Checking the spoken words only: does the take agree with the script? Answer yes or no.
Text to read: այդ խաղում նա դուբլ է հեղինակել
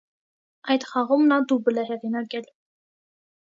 yes